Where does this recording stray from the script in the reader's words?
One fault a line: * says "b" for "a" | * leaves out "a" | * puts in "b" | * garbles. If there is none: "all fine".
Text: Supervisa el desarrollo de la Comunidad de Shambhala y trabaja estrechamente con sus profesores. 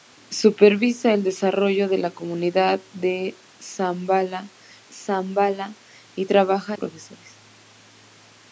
* puts in "Shambhala"
* leaves out "estrechamente con sus"